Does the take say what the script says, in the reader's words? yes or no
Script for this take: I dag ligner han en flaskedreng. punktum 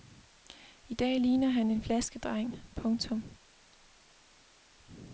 yes